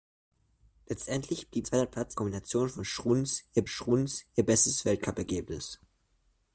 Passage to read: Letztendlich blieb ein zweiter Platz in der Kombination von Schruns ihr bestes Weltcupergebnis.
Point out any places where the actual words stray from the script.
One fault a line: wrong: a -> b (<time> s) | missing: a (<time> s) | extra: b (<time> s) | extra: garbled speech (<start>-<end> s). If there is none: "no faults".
missing: ein (1.7 s)
missing: der (2.2 s)
extra: Schruns ihr (3.7 s)